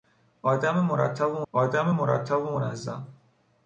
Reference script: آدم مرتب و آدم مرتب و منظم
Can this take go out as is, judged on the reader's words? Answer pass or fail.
pass